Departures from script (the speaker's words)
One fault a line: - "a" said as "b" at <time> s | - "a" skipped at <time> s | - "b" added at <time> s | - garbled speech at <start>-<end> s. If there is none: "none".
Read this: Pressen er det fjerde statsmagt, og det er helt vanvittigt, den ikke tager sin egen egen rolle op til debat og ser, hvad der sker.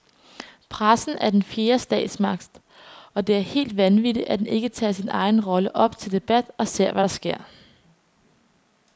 - "det" said as "den" at 1.3 s
- "at" added at 4.3 s
- "egen" skipped at 5.5 s